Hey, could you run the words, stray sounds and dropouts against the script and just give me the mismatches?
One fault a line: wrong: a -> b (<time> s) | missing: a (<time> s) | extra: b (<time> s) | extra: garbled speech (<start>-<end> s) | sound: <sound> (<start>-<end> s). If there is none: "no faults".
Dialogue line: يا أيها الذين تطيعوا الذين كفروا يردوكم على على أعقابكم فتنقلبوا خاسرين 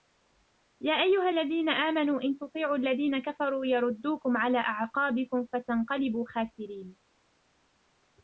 extra: آمنوا إن (1.7 s)
missing: على (4.6 s)